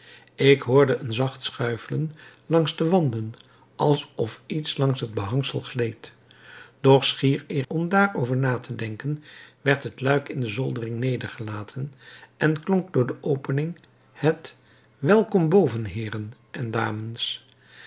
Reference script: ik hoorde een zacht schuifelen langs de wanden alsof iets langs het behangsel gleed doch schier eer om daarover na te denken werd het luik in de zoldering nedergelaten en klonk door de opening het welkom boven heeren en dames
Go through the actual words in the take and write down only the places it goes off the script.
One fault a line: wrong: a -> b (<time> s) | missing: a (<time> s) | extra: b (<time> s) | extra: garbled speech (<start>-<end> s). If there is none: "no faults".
no faults